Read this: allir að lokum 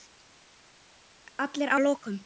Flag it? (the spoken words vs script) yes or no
no